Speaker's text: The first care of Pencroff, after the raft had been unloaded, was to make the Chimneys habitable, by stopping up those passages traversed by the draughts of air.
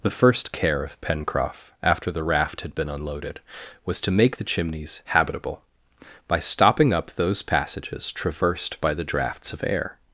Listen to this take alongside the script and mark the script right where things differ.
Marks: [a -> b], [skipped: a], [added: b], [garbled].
The first care of Pencroff, after the raft had been unloaded, was to make the Chimneys habitable, by stopping up those passages traversed by the draughts of air.